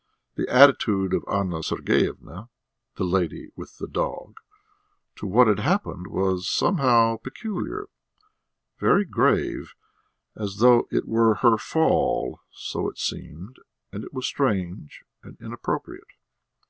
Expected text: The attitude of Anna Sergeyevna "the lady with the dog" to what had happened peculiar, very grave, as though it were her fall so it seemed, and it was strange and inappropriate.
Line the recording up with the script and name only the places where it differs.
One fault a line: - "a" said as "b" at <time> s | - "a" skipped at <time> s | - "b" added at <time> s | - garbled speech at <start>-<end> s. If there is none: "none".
- "was somehow" added at 6.1 s